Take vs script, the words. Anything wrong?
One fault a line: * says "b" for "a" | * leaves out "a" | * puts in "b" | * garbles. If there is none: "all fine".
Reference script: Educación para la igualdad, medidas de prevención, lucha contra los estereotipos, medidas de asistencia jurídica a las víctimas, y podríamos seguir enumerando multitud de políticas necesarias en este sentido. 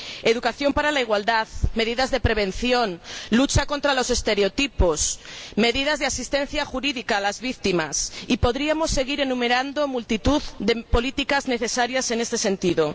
all fine